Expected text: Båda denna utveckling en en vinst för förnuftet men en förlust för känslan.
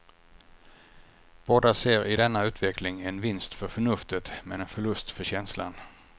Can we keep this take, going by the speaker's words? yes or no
no